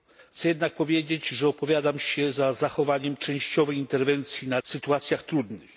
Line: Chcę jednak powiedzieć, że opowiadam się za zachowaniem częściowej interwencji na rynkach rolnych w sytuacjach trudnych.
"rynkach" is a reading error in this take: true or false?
true